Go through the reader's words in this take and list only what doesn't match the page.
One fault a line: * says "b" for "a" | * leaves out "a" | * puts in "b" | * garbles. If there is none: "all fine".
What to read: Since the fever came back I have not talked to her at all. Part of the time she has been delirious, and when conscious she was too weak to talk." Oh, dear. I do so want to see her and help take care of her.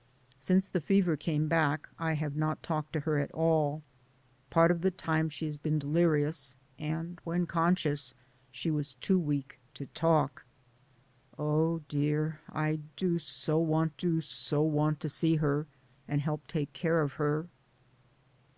* puts in "do so want"